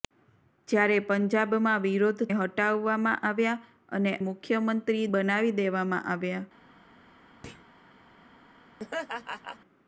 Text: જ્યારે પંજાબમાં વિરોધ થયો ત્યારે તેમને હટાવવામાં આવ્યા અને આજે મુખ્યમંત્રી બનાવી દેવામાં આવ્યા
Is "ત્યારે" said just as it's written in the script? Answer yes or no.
no